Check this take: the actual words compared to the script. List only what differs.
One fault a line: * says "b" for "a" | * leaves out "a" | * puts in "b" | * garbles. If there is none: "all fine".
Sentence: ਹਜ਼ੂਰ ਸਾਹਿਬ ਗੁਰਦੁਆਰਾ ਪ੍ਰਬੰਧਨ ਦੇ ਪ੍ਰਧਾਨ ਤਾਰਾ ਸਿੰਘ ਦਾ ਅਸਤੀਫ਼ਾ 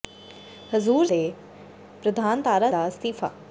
* leaves out "ਸਾਹਿਬ ਗੁਰਦੁਆਰਾ ਪ੍ਰਬੰਧਨ"
* leaves out "ਸਿੰਘ"